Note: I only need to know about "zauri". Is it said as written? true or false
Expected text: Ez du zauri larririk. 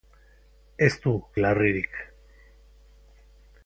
false